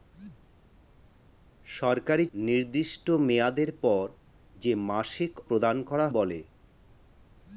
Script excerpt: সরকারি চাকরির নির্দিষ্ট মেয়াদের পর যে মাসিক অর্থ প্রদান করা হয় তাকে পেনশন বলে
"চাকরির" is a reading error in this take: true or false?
true